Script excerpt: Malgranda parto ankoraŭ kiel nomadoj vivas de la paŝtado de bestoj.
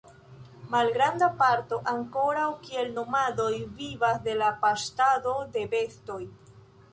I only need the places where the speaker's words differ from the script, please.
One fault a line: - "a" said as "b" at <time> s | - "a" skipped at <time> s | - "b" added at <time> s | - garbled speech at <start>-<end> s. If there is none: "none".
none